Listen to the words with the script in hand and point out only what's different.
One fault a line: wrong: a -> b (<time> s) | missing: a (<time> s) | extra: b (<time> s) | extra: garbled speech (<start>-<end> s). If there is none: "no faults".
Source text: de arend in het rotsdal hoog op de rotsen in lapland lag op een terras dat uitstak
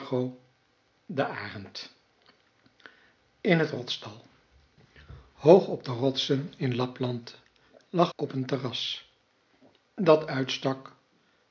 no faults